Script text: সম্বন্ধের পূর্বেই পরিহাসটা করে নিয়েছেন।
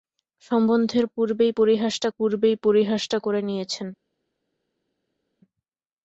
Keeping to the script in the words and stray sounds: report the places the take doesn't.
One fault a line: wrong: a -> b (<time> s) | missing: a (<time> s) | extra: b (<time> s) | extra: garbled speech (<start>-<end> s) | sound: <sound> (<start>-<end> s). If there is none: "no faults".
extra: পূর্বেই পরিহাসটা (2.1 s)